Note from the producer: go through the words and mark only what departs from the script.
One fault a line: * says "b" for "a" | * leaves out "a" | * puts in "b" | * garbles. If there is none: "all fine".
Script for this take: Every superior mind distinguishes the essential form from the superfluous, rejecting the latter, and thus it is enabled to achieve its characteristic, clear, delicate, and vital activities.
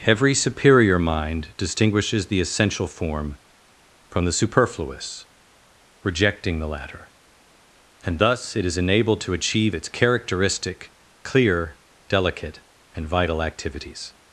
all fine